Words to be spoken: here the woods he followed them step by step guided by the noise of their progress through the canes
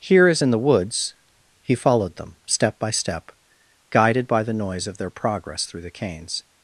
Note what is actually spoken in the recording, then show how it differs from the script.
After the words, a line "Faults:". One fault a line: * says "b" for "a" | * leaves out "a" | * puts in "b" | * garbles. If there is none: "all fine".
here as in the woods he followed them step by step guided by the noise of their progress through the canes
Faults:
* puts in "as in"